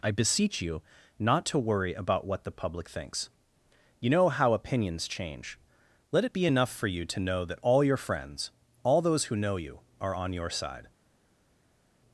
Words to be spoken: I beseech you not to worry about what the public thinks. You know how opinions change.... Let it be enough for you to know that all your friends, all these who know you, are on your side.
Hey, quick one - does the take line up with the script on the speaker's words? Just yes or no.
no